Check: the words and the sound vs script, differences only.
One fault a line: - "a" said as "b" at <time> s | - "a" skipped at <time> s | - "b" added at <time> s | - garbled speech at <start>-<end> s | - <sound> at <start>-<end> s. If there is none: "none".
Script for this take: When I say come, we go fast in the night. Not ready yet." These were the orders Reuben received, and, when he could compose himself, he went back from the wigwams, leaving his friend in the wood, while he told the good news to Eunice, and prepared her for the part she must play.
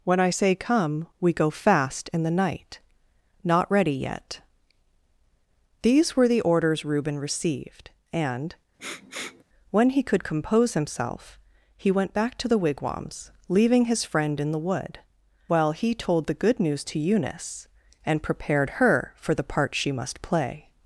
- sniff at 8.8-9.4 s
- "from" said as "to" at 12.4 s